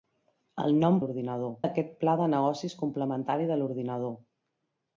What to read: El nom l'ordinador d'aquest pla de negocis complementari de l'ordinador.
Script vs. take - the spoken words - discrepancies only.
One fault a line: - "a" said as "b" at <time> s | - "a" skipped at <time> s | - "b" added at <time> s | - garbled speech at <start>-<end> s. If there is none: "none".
none